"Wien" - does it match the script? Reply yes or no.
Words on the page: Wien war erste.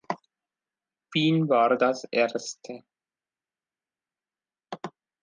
yes